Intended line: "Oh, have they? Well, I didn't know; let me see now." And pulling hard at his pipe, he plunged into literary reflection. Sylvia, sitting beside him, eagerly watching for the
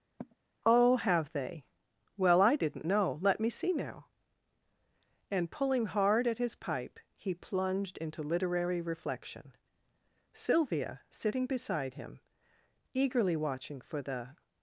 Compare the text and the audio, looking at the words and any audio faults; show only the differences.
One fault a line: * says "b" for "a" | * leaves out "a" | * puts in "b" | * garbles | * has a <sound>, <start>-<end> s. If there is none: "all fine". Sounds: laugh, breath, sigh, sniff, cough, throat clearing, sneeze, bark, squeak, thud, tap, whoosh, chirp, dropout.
* has a sigh, 0.2-0.4 s